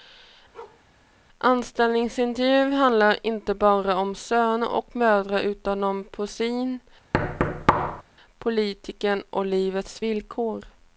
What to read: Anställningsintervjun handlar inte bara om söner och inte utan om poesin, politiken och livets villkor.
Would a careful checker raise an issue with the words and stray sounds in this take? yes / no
yes